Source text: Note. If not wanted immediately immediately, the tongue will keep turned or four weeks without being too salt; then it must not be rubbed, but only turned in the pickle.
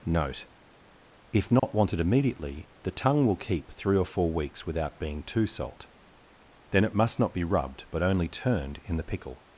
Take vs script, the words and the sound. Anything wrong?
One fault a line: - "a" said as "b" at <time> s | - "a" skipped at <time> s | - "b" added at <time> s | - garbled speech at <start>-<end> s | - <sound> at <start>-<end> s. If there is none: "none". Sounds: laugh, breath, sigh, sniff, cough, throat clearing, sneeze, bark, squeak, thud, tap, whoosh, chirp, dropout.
- dropout at 1.6-1.6 s
- "immediately" skipped at 2.7 s
- "turned" said as "three" at 3.7 s